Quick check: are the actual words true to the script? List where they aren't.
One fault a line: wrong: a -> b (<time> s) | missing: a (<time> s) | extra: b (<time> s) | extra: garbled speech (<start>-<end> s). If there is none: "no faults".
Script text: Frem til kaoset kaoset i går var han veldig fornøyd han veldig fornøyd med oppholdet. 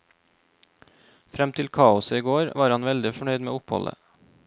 missing: kaoset (2.2 s)
missing: han veldig fornøyd (3.4 s)